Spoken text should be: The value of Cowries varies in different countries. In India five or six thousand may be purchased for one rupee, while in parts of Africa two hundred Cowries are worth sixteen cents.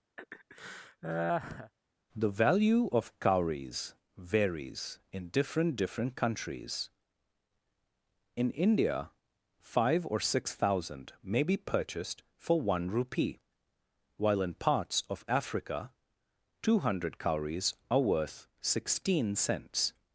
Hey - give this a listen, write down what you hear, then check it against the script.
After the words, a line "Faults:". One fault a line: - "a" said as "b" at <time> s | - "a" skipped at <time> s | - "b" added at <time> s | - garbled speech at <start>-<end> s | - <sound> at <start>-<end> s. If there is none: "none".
The value of Cowries varies in different different countries. In India five or six thousand may be purchased for one rupee, while in parts of Africa two hundred Cowries are worth sixteen cents.
Faults:
- laugh at 0.2-1.7 s
- "different" added at 5.8 s